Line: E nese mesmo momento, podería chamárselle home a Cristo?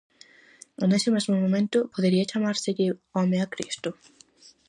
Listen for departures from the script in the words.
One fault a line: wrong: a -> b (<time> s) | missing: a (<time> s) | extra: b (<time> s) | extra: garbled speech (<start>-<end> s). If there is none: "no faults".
no faults